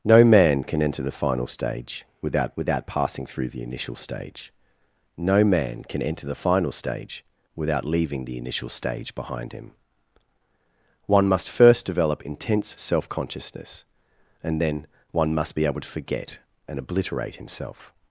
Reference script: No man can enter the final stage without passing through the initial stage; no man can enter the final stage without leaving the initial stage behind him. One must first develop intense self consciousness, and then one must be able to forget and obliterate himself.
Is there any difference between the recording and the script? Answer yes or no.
yes